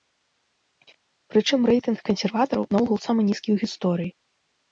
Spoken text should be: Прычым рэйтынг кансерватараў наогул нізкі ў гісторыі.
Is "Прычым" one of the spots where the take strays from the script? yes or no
no